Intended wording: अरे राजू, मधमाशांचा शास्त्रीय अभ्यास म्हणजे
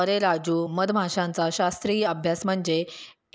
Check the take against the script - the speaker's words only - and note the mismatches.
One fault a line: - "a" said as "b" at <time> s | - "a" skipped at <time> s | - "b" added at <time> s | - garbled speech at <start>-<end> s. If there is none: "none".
none